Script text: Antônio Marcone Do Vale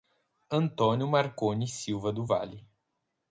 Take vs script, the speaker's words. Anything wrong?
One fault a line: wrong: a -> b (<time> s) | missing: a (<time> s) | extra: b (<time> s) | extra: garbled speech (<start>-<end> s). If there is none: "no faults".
extra: Silva (1.7 s)